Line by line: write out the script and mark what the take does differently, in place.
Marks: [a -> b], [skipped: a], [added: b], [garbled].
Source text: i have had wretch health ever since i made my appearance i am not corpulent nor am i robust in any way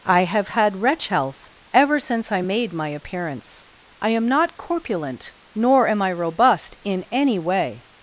i have had wretch health ever since i made my appearance i am not corpulent nor am i robust in any way